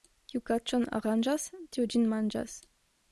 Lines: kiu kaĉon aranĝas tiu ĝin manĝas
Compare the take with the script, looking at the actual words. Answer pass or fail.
pass